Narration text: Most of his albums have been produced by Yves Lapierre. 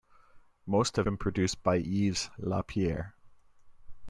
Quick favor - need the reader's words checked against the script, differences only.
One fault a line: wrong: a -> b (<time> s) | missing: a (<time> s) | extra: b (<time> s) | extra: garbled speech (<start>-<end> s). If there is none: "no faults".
missing: his albums have (1.1 s)